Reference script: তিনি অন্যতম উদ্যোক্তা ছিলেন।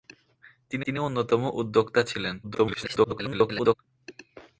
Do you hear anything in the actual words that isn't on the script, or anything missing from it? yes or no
yes